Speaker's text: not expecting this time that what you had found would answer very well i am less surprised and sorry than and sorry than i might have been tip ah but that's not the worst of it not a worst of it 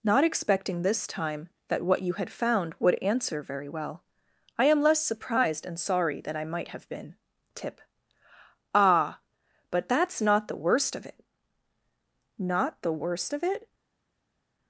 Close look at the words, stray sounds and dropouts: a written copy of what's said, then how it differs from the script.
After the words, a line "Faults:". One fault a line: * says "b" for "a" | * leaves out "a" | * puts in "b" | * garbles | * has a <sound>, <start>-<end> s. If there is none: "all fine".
not expecting this time that what you had found would answer very well i am less surprised and sorry than i might have been tip ah but that's not the worst of it not the worst of it
Faults:
* leaves out "and sorry than"
* says "the" for "a"